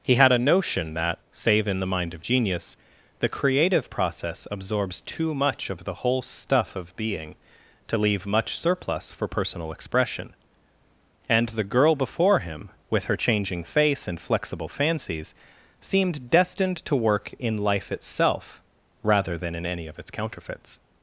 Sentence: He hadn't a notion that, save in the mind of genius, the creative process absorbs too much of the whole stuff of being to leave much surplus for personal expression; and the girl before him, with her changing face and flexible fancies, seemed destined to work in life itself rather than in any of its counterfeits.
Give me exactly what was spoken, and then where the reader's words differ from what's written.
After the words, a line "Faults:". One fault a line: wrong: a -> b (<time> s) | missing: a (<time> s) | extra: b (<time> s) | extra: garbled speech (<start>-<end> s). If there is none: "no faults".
He had a notion that, save in the mind of genius, the creative process absorbs too much of the whole stuff of being to leave much surplus for personal expression; and the girl before him, with her changing face and flexible fancies, seemed destined to work in life itself rather than in any of its counterfeits.
Faults:
wrong: hadn't -> had (0.1 s)